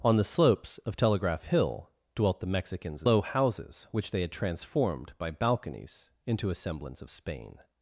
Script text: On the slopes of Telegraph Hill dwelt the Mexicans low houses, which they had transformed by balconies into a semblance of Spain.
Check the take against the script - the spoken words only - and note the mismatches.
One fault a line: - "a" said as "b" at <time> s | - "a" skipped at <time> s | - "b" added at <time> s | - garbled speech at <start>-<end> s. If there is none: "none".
none